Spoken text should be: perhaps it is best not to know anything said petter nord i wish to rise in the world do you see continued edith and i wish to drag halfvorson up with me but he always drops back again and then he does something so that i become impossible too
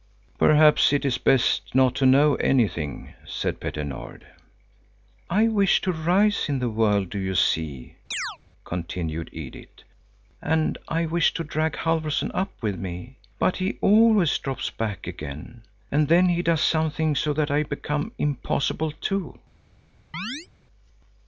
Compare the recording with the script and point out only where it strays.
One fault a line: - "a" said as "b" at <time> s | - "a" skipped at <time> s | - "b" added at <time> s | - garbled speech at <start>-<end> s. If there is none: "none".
none